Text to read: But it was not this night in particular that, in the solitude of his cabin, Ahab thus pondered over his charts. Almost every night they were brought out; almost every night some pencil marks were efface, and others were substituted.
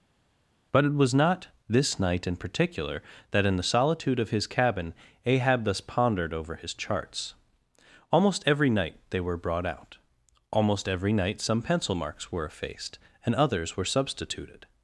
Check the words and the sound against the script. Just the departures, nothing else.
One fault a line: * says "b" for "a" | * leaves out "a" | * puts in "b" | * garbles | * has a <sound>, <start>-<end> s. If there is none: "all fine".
* says "effaced" for "efface"